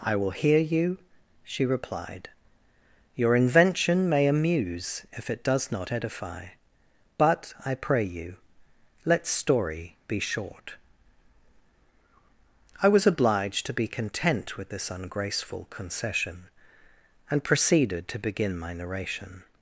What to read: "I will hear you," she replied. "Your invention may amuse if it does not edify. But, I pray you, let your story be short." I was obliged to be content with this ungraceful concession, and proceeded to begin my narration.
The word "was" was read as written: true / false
true